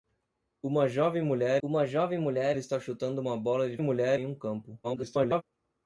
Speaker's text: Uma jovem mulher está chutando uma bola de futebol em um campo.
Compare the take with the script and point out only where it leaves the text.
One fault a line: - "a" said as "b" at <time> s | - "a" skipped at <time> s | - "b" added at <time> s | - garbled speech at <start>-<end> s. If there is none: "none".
- "uma jovem mulher" added at 1.6 s
- "futebol" said as "mulher" at 3.8 s
- garbled speech at 4.8-5.4 s